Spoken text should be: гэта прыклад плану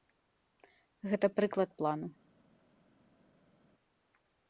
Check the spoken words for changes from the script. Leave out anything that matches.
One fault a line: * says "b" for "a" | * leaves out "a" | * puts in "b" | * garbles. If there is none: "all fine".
all fine